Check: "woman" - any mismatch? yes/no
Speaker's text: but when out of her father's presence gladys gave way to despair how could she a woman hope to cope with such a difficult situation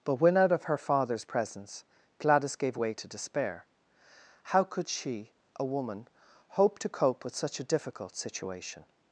no